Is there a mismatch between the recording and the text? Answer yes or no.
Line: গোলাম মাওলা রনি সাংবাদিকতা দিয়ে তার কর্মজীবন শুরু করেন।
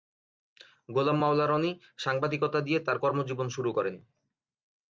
no